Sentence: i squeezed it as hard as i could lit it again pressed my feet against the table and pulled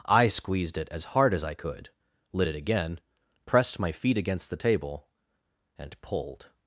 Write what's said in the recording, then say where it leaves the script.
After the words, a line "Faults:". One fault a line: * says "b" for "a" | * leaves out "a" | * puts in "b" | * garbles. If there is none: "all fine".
i squeezed it as hard as i could lit it again pressed my feet against the table and pulled
Faults:
all fine